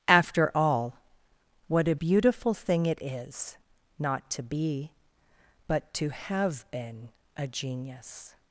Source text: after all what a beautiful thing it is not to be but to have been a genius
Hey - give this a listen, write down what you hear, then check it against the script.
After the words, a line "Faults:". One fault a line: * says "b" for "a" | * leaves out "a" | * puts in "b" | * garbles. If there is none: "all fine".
after all what a beautiful thing it is not to be but to have been a genius
Faults:
all fine